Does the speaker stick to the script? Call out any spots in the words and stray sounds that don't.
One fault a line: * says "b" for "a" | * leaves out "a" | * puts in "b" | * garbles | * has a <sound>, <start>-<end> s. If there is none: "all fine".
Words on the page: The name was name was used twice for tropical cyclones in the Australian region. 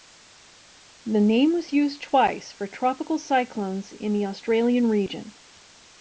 * leaves out "name was"